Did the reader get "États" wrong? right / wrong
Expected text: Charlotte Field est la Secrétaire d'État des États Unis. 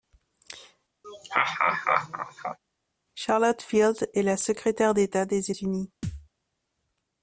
wrong